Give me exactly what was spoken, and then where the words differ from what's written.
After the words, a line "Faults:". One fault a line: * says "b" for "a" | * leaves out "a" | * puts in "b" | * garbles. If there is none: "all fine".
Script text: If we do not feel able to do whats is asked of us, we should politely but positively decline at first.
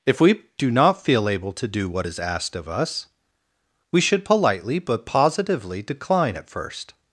If we do not feel able to do what is asked of us, we should politely but positively decline at first.
Faults:
* says "what" for "whats"